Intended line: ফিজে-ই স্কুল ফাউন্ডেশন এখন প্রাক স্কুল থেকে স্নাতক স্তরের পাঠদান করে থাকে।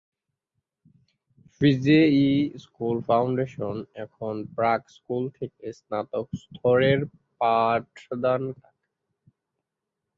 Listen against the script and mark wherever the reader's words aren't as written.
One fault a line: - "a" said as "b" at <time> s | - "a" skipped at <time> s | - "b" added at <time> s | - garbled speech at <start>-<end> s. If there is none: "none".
- "করে" skipped at 8.4 s